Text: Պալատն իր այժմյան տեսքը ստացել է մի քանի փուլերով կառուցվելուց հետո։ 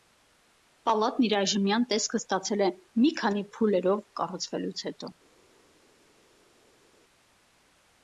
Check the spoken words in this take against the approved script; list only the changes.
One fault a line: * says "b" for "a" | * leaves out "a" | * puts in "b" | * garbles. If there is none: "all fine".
all fine